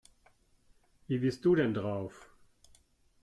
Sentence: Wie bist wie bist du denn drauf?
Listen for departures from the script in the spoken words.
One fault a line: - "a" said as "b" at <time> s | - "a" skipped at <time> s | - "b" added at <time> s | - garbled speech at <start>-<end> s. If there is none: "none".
- "wie bist" skipped at 1.4 s